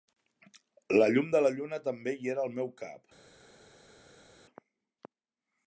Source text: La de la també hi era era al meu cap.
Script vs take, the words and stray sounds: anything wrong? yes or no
yes